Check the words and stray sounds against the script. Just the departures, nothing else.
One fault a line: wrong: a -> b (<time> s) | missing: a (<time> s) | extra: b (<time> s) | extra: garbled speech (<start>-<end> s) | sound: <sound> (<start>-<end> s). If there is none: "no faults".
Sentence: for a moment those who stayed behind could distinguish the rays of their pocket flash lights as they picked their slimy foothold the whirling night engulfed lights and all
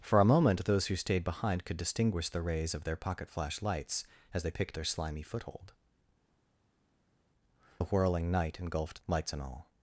no faults